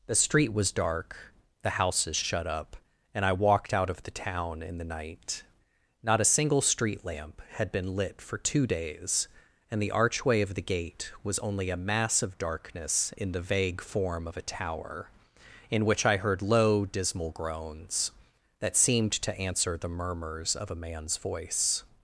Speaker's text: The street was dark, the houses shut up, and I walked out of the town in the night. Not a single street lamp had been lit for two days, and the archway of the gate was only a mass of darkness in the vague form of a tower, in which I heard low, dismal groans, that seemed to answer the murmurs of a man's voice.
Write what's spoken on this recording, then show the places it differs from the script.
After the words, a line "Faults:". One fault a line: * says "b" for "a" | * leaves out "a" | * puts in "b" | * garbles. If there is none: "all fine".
The street was dark, the houses shut up, and I walked out of the town in the night. Not a single street lamp had been lit for two days, and the archway of the gate was only a mass of darkness in the vague form of a tower, in which I heard low, dismal groans, that seemed to answer the murmurs of a man's voice.
Faults:
all fine